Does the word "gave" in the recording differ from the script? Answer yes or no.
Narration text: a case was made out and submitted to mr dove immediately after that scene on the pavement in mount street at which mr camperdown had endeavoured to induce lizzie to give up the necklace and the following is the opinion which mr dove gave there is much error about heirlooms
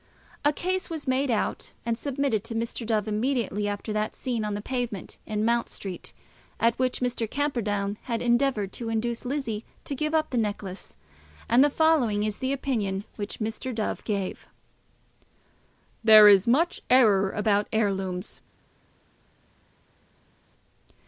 no